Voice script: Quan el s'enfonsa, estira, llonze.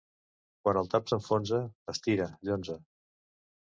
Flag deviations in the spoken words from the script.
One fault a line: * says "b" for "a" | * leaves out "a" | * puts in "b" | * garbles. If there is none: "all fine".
* puts in "tap"